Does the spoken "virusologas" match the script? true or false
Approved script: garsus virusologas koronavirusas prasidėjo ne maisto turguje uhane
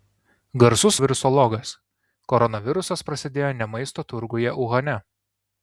true